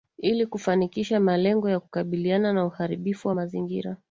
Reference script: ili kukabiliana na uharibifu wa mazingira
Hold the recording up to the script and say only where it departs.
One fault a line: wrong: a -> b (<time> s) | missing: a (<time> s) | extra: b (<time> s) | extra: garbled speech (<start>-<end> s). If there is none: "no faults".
extra: kufanikisha malengo ya (0.5 s)